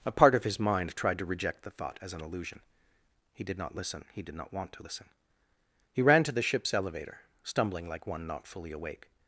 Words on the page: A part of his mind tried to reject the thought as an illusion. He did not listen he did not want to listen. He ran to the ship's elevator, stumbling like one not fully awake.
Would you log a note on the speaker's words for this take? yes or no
no